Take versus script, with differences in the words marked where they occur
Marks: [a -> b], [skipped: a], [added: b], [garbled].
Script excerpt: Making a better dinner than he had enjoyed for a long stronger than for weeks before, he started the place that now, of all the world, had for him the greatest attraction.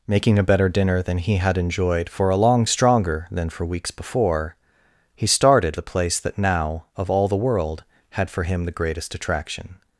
Making a better dinner than he had enjoyed for a long stronger than for weeks before, he started the place that now, of all the world, had for him the greatest attraction.